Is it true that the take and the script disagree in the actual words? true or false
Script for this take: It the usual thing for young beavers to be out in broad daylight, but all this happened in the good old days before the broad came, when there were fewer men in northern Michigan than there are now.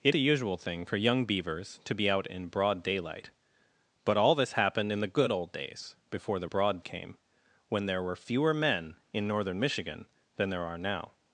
false